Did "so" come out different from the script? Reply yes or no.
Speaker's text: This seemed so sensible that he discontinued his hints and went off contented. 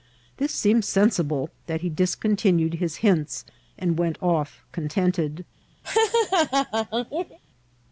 yes